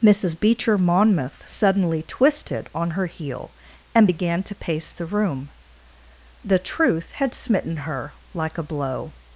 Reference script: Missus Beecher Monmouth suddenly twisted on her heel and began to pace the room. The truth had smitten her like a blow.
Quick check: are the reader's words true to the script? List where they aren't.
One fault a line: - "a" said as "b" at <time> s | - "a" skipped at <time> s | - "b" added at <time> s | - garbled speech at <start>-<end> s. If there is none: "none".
none